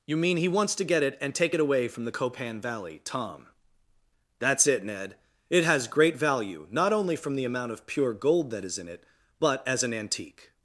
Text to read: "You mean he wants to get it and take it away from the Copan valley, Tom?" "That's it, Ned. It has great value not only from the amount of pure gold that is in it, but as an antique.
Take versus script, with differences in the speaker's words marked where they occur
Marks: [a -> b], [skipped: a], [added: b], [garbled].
"You mean he wants to get it and take it away from the Copan valley, Tom?" "That's it, Ned. It has great value not only from the amount of pure gold that is in it, but as an antique.